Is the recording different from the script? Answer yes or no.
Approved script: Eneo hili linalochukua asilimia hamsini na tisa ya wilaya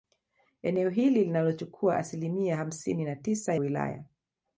yes